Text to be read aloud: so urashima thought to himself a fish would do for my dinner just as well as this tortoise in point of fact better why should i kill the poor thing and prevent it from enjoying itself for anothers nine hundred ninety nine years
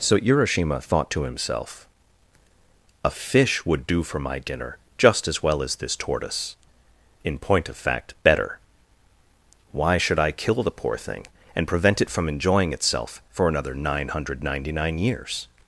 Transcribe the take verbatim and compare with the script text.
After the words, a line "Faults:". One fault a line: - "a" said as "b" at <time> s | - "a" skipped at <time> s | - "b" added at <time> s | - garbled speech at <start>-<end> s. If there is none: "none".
so urashima thought to himself a fish would do for my dinner just as well as this tortoise in point of fact better why should i kill the poor thing and prevent it from enjoying itself for another nine hundred ninety nine years
Faults:
- "anothers" said as "another" at 13.5 s